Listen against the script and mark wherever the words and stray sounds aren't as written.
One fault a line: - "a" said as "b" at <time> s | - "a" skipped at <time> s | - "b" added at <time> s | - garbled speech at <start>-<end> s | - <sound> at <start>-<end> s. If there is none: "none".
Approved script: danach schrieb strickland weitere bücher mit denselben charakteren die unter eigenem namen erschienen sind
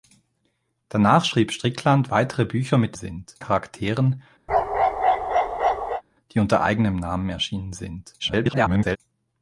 - "denselben" said as "sind" at 2.9 s
- bark at 4.5-6.0 s
- garbled speech at 8.2-9.0 s